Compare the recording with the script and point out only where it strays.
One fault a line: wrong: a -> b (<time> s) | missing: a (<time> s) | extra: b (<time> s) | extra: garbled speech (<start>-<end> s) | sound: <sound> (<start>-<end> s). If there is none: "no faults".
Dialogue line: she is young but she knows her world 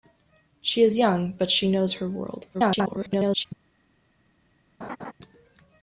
extra: garbled speech (2.5-3.5 s)
sound: laugh (4.8-5.1 s)